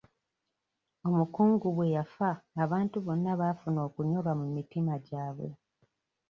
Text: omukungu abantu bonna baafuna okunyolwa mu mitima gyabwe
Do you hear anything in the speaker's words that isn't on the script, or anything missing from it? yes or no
yes